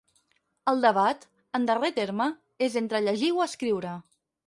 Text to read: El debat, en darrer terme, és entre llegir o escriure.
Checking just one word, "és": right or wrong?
right